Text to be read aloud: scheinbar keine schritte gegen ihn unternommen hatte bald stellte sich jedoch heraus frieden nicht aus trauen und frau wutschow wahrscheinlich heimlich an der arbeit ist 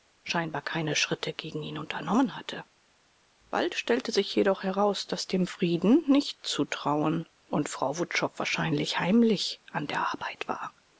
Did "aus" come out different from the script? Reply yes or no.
yes